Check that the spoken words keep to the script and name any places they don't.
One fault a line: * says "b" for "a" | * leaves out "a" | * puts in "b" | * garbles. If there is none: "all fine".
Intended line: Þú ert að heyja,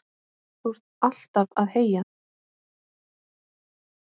* puts in "alltaf"